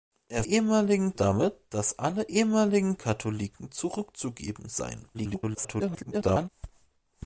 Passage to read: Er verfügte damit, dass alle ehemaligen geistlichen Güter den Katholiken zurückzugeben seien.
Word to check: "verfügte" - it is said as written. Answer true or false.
false